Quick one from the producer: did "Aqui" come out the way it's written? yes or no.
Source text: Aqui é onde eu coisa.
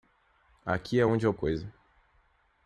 yes